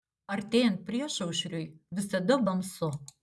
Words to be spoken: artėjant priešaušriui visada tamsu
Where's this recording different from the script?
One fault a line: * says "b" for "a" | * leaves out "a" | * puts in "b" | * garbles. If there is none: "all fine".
all fine